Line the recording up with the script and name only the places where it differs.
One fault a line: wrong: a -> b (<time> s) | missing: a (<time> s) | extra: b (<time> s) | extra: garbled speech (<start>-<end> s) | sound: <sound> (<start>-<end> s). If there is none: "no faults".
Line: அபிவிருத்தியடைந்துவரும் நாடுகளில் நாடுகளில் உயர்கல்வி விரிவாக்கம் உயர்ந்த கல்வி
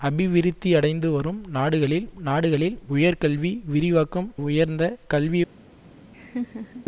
sound: laugh (6.1-6.9 s)